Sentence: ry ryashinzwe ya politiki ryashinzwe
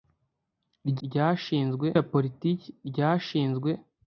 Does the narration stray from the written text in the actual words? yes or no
no